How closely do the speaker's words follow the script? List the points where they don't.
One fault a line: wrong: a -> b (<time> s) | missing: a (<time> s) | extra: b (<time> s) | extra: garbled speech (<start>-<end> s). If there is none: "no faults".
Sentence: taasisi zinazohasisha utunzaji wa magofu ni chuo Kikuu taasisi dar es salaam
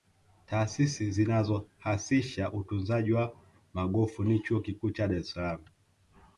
wrong: taasisi -> cha (4.9 s)